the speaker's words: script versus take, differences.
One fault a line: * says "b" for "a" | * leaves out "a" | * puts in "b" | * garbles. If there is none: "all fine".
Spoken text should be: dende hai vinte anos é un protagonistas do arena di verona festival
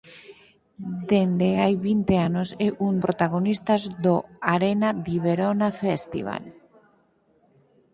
all fine